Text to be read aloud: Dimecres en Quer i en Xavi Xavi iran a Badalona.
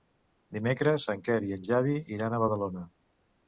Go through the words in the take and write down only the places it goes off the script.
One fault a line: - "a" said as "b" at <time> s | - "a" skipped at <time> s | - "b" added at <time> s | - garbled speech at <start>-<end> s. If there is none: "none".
- "Xavi" skipped at 2.0 s